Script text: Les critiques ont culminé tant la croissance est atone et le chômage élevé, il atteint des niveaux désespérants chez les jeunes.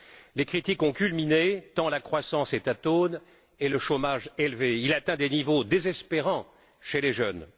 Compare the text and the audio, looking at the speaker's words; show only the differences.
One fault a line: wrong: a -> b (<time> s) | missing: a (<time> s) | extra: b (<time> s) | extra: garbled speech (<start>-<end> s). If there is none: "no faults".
no faults